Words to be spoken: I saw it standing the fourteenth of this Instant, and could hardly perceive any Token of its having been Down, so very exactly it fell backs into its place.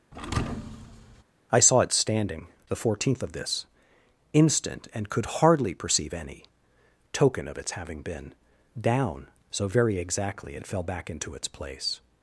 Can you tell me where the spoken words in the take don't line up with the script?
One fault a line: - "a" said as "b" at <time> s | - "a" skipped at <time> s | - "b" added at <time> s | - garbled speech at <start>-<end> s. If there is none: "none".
- "backs" said as "back" at 10.8 s